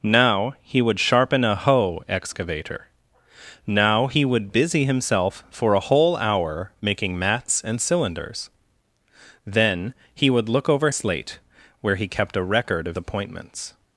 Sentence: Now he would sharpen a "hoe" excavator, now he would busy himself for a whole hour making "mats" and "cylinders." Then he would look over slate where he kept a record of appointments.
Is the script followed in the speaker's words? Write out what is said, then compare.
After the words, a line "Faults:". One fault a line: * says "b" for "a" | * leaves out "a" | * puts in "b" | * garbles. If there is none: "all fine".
Now he would sharpen a "hoe" excavator, now he would busy himself for a whole hour making "mats" and "cylinders." Then he would look over slate where he kept a record of appointments.
Faults:
all fine